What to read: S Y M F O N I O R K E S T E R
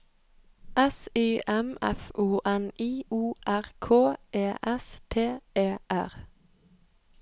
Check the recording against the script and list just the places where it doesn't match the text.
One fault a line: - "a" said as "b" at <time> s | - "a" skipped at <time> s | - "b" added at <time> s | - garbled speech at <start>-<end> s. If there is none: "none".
none